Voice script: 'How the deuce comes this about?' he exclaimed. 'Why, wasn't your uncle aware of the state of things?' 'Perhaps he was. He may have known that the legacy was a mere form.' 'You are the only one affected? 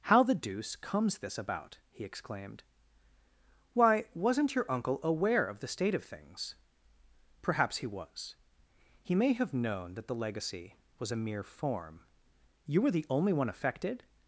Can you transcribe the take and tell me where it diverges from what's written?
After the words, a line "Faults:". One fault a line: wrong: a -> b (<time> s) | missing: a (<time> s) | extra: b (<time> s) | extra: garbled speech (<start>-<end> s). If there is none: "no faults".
'How the deuce comes this about?' he exclaimed. 'Why, wasn't your uncle aware of the state of things?' 'Perhaps he was. He may have known that the legacy was a mere form.' 'You were the only one affected?
Faults:
wrong: are -> were (12.8 s)